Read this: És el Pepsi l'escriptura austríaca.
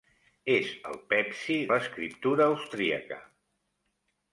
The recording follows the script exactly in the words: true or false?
true